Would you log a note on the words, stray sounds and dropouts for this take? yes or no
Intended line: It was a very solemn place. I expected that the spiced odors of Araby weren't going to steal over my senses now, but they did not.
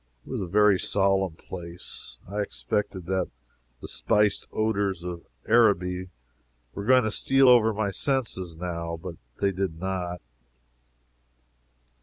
yes